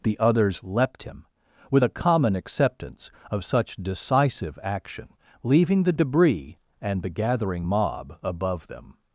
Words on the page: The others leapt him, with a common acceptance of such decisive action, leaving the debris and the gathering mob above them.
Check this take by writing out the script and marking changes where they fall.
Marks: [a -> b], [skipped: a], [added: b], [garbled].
The others leapt him, with a common acceptance of such decisive action, leaving the debris and the gathering mob above them.